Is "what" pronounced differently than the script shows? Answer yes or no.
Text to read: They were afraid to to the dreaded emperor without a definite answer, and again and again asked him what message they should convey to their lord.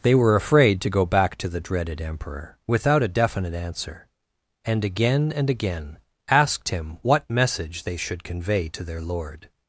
no